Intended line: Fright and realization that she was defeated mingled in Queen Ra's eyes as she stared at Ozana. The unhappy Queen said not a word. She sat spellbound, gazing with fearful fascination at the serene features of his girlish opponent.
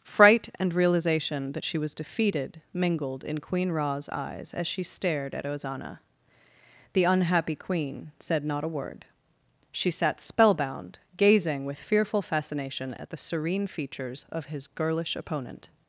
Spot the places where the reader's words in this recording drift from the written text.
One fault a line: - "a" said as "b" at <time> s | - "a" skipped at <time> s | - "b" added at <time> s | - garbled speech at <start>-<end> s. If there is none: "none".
none